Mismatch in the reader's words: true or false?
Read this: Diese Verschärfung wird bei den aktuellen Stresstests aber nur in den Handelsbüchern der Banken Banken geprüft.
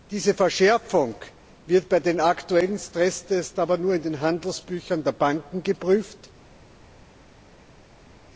true